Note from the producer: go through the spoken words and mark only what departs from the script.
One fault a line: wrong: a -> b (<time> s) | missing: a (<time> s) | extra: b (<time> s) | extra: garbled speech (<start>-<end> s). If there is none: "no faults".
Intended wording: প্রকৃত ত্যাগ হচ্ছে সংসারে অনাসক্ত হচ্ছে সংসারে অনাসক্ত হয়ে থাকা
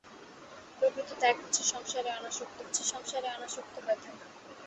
no faults